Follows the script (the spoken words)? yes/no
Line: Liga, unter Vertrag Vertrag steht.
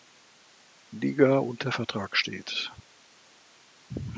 no